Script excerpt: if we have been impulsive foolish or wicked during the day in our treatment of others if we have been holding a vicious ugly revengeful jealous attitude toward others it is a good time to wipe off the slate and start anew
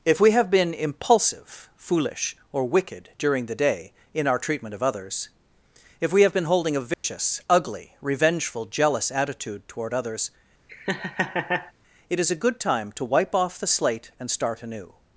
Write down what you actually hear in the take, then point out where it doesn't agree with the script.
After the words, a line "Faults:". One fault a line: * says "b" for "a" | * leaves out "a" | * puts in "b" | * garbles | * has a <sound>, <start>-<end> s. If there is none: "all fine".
if we have been impulsive foolish or wicked during the day in our treatment of others if we have been holding a vicious ugly revengeful jealous attitude toward others it is a good time to wipe off the slate and start anew
Faults:
* has a dropout, 6.9-7.0 s
* has a laugh, 10.7-11.7 s